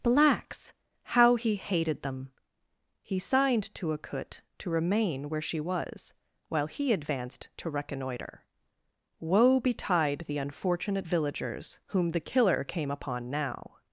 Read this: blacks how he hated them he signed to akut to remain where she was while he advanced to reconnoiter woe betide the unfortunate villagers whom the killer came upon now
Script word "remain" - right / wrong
right